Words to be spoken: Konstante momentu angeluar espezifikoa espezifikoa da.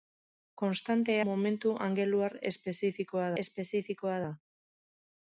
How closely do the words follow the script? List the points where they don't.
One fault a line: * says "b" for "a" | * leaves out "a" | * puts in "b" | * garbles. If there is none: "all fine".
all fine